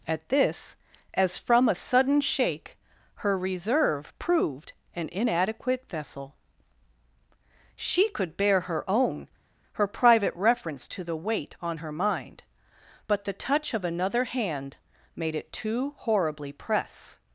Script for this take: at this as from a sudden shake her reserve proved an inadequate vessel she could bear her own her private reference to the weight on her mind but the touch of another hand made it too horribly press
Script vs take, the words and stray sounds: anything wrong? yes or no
no